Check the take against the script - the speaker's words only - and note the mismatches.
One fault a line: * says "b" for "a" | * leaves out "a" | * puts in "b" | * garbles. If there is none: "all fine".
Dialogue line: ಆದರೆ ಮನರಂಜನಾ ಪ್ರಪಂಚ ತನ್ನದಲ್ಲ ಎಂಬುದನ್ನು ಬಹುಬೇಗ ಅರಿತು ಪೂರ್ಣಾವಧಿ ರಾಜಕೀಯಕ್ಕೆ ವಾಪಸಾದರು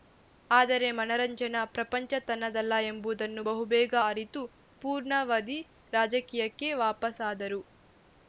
all fine